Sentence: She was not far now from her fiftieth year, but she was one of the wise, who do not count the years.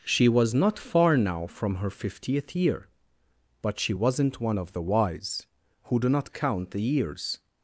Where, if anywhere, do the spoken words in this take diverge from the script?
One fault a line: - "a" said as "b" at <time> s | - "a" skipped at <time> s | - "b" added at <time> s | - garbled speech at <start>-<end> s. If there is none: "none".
- "was" said as "wasn't" at 3.9 s